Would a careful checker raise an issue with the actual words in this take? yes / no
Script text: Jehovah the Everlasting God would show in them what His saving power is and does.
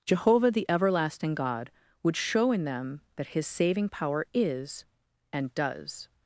yes